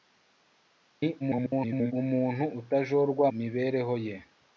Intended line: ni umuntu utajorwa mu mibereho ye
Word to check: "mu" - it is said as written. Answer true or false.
false